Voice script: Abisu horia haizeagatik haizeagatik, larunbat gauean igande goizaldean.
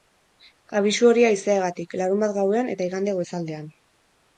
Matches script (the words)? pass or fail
fail